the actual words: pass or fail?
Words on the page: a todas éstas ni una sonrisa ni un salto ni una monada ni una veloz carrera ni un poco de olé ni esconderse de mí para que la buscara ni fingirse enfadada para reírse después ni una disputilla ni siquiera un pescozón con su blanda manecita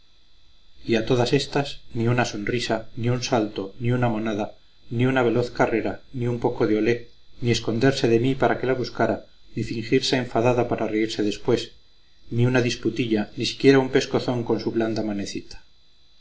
pass